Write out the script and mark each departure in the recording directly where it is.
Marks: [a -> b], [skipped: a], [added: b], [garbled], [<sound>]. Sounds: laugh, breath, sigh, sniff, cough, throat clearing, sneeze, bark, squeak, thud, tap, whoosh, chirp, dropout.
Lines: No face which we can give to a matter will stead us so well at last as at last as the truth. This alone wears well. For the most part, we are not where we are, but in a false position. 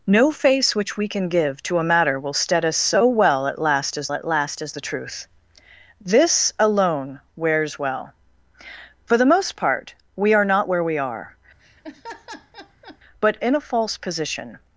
No face which we can give to a matter will stead us so well at last as at last as the truth. This alone wears well. For the most part, we are not where we are, [laugh] but in a false position.